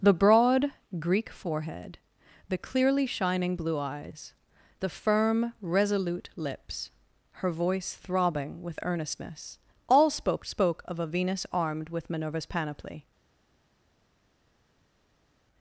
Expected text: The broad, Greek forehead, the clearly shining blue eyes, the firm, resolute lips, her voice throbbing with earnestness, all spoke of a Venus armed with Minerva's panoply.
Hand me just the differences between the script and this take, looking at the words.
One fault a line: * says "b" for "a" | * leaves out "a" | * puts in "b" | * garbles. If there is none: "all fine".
* puts in "spoke"